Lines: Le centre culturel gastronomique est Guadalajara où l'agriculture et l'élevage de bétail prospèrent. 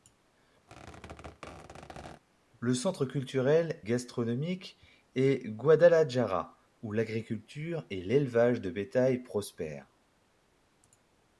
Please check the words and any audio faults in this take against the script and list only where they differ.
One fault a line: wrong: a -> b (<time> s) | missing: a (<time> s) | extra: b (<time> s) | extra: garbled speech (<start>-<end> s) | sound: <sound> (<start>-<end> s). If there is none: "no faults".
sound: squeak (0.7-2.2 s)